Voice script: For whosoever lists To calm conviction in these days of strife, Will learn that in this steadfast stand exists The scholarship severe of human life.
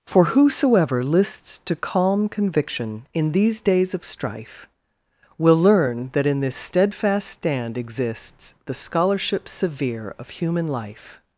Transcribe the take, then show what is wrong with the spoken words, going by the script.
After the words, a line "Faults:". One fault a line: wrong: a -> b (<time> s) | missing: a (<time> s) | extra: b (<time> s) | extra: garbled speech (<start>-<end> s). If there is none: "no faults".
For whosoever lists To calm conviction in these days of strife, Will learn that in this steadfast stand exists The scholarship severe of human life.
Faults:
no faults